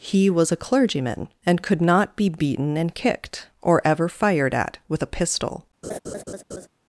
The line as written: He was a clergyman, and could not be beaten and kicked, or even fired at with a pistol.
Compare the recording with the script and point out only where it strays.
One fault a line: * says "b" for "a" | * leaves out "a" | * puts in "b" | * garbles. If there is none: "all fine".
* says "ever" for "even"